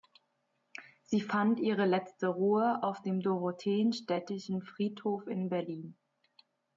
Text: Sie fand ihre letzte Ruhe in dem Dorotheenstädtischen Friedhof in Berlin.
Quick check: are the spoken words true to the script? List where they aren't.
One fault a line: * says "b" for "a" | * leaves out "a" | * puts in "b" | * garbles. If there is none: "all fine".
* says "auf" for "in"